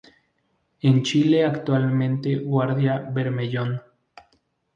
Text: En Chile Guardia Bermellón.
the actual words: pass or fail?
fail